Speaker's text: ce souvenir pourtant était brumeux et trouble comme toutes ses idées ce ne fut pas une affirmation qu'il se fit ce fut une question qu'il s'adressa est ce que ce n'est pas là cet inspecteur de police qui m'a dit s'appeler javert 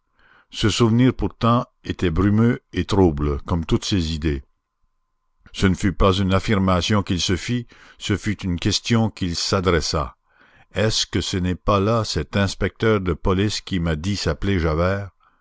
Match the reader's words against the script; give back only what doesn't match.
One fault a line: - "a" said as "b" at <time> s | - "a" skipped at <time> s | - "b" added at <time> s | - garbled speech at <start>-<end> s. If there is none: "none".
none